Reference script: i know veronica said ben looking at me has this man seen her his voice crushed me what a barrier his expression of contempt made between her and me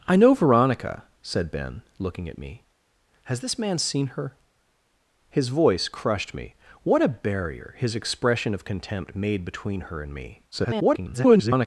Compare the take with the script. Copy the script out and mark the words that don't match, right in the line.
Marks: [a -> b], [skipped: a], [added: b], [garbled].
i know veronica said ben looking at me has this man seen her his voice crushed me what a barrier his expression of contempt made between her and me [garbled]